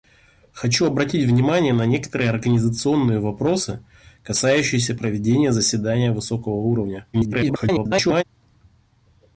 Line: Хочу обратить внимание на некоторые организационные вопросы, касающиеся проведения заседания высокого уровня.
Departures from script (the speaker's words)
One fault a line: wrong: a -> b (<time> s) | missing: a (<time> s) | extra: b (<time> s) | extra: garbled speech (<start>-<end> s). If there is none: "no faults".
extra: garbled speech (7.1-8.2 s)